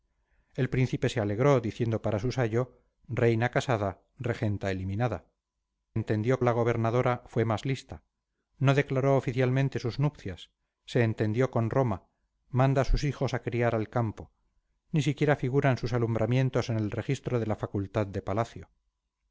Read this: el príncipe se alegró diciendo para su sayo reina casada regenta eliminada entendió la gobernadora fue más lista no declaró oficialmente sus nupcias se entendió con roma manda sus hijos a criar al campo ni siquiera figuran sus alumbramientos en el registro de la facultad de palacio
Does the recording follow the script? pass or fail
pass